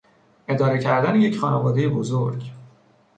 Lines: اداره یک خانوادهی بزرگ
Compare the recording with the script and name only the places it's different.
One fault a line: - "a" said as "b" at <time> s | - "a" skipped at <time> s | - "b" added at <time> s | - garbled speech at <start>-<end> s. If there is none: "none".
- "کردن" added at 0.8 s